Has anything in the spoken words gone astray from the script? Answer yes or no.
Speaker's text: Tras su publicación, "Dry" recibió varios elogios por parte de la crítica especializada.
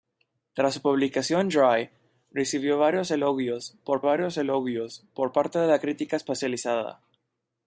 yes